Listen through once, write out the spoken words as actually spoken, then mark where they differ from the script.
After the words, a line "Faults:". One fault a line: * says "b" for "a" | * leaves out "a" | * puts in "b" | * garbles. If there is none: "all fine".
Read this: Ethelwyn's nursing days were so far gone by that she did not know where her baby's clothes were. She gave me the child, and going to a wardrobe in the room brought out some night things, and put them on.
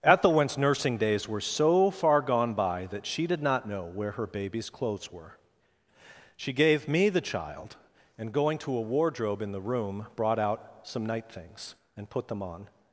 Ethelwyn's nursing days were so far gone by that she did not know where her baby's clothes were. She gave me the child, and going to a wardrobe in the room brought out some night things, and put them on.
Faults:
all fine